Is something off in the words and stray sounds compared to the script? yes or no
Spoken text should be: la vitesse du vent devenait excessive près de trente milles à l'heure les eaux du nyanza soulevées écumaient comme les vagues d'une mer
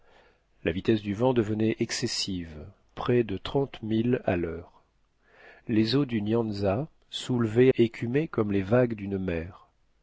no